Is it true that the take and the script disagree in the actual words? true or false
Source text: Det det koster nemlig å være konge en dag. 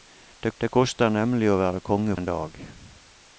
false